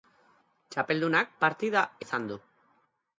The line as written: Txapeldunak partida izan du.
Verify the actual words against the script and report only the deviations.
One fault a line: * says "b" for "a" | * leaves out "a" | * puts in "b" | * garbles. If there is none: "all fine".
all fine